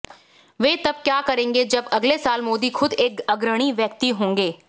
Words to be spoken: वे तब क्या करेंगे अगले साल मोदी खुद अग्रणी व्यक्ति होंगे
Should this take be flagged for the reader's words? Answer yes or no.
yes